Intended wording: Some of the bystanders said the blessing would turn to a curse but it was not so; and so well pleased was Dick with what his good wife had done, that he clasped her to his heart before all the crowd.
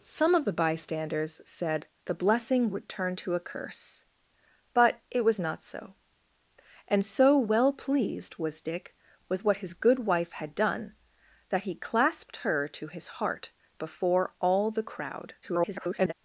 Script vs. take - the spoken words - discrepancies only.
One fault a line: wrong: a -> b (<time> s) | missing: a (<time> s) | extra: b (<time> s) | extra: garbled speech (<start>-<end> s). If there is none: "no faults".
extra: garbled speech (15.4-16.1 s)